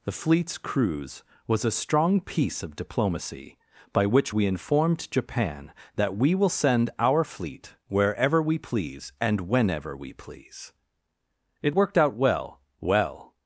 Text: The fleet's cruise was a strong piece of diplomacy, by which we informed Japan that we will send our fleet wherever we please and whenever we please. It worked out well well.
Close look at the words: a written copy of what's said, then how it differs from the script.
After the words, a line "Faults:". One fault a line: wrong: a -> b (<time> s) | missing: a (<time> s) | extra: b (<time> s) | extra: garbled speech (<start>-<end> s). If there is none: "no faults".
The fleet's cruise was a strong piece of diplomacy, by which we informed Japan that we will send our fleet wherever we please and whenever we please. It worked out well well.
Faults:
no faults